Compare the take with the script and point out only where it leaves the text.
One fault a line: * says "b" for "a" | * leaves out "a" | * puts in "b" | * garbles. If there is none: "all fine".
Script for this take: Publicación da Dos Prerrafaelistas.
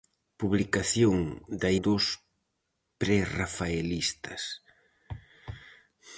all fine